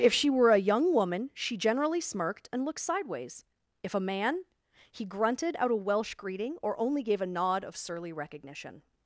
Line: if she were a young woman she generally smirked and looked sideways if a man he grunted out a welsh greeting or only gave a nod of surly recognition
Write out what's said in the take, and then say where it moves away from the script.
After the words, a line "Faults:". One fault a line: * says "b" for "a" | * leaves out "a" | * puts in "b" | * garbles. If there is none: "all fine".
if she were a young woman she generally smirked and looked sideways if a man he grunted out a welsh greeting or only gave a nod of surly recognition
Faults:
all fine